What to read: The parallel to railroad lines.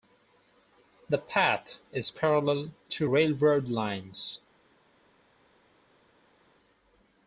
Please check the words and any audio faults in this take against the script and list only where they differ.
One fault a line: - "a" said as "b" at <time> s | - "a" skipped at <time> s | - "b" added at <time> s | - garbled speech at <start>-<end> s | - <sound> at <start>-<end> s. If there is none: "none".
- "path is" added at 1.2 s